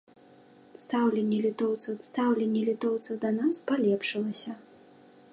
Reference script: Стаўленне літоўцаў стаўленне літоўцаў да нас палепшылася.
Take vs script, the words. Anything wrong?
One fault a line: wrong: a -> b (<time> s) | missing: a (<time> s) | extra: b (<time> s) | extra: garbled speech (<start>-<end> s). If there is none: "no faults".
no faults